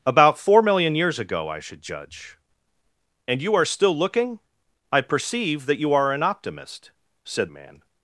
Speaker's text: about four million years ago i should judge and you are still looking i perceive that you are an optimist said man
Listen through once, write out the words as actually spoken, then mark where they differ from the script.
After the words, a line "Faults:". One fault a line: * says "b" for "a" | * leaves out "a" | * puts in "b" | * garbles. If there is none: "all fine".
about four million years ago i should judge and you are still looking i perceive that you are an optimist said man
Faults:
all fine